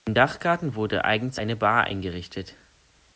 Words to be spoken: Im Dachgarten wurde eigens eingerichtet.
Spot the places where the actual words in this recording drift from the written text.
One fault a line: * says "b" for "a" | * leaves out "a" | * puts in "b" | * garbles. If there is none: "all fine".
* puts in "eine Bar"